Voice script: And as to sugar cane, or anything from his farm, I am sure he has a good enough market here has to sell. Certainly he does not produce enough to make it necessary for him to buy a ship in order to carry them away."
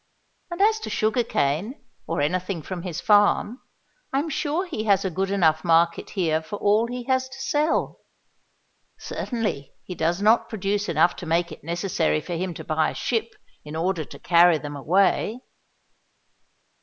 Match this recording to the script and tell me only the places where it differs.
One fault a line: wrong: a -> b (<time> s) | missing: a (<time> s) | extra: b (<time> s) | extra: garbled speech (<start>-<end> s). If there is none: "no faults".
extra: for all he (6.4 s)